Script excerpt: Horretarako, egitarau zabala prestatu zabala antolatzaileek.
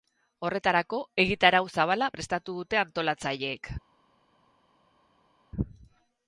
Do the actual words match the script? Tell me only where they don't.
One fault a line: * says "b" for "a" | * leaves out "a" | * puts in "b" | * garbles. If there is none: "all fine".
* says "dute" for "zabala"